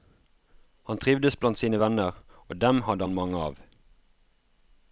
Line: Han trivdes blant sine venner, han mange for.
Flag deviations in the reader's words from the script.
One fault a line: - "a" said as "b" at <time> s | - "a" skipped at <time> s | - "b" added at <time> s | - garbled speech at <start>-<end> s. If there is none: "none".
- "og dem hadde" added at 2.5 s
- "for" said as "av" at 3.4 s